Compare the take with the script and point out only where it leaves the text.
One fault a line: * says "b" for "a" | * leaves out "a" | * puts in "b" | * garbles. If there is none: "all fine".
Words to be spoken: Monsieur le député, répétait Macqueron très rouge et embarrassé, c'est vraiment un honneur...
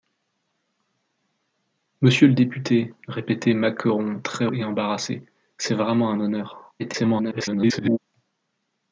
* leaves out "rouge"
* garbles